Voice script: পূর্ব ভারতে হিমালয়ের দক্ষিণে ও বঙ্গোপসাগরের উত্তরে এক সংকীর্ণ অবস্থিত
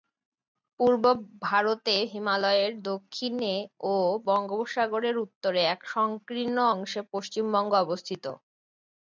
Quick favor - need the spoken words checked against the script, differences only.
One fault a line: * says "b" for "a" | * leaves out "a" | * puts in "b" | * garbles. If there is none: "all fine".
* puts in "অংশে পশ্চিমবঙ্গ"